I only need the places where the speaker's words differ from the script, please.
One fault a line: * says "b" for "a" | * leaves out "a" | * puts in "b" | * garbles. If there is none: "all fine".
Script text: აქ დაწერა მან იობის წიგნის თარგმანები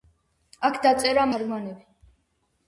* leaves out "მან იობის წიგნის"